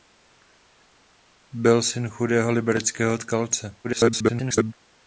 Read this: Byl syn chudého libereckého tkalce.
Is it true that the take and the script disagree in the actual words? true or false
true